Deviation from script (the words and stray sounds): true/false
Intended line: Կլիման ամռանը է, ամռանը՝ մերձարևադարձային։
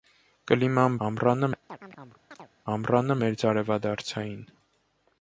true